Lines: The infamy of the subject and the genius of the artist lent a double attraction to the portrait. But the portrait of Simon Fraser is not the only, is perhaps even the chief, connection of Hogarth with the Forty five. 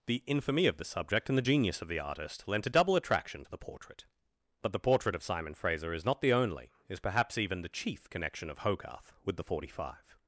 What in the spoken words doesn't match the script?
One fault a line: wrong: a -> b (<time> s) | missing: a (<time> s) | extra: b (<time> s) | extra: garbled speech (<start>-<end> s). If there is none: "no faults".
no faults